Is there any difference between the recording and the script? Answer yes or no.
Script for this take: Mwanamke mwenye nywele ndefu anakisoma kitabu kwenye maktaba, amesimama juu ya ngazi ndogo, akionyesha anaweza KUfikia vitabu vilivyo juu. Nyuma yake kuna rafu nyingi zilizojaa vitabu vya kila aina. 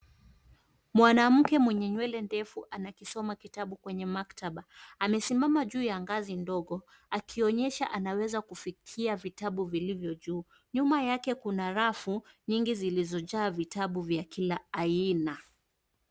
no